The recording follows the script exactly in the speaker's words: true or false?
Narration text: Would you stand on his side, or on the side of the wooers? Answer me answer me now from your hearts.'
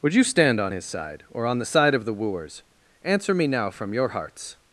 false